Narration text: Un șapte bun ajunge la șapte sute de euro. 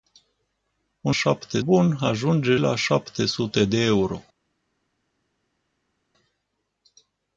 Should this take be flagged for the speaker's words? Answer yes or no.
no